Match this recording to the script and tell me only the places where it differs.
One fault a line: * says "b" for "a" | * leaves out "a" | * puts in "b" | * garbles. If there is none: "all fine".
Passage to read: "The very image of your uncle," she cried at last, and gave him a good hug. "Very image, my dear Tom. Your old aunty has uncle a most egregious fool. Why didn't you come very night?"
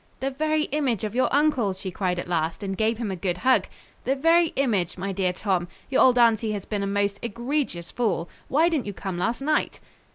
* puts in "The"
* says "been" for "uncle"
* says "last" for "very"